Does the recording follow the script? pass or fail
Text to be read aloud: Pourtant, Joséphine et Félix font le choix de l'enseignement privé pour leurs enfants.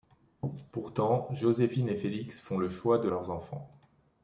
fail